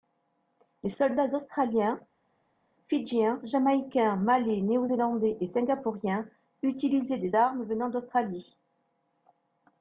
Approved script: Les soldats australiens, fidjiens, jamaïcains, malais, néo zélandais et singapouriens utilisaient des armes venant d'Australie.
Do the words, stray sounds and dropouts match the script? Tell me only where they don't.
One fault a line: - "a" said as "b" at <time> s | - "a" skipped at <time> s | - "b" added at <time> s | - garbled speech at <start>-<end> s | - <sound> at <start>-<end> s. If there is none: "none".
none